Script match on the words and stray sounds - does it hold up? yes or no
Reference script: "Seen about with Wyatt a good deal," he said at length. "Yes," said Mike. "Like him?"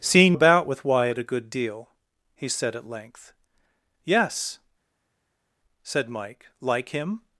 yes